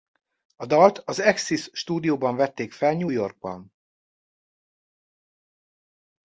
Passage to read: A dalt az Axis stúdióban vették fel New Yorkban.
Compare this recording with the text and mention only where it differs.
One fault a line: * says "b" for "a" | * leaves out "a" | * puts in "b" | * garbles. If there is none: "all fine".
all fine